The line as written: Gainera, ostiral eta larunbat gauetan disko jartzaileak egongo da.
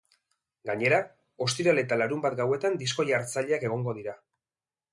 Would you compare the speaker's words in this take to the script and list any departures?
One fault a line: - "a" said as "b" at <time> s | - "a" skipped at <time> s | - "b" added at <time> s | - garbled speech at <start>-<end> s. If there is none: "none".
- "da" said as "dira" at 4.0 s